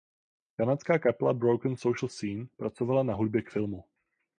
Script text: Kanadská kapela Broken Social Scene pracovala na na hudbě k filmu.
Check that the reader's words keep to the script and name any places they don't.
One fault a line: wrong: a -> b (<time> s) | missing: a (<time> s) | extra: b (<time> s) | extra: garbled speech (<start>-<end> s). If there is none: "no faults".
missing: na (3.1 s)